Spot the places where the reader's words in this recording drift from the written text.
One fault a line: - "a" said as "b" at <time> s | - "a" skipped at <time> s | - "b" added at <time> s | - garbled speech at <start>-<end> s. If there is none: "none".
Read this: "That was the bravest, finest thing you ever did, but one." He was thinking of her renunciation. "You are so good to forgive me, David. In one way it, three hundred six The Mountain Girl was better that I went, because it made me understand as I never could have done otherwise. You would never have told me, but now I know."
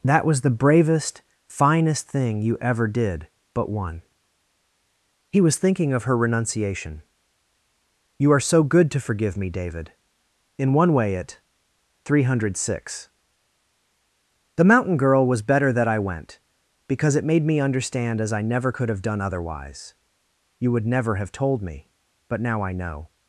none